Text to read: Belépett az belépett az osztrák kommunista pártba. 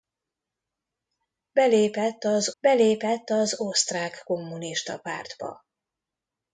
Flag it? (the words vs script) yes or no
no